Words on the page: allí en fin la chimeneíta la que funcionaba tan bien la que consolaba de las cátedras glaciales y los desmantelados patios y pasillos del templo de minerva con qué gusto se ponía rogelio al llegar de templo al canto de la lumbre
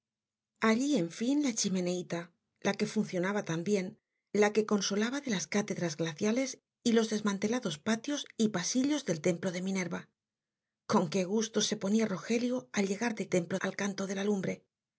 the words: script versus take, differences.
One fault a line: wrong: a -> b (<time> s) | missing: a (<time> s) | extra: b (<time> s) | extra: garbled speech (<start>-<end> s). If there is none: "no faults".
no faults